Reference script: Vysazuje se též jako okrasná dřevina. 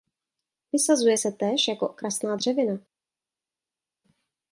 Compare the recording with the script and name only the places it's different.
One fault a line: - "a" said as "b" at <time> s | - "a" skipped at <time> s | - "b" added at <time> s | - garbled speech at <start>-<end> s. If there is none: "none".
none